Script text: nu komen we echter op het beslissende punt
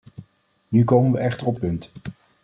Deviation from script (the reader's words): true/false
true